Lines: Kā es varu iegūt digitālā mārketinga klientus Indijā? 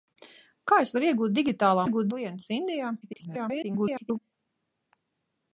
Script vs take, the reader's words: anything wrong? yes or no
yes